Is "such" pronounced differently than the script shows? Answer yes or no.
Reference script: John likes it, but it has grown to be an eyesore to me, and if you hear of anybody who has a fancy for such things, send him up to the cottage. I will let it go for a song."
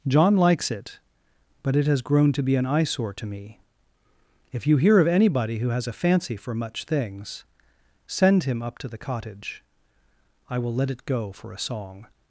yes